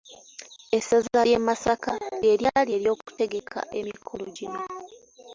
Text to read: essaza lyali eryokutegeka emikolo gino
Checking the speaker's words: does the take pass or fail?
fail